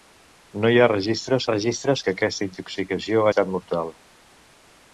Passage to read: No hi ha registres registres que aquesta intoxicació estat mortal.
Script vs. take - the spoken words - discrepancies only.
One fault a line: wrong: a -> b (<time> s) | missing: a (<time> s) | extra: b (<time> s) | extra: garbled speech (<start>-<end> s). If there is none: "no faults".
no faults